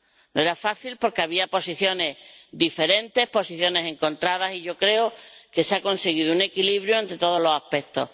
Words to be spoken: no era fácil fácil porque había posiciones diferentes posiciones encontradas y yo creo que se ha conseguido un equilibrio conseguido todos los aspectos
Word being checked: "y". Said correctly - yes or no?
yes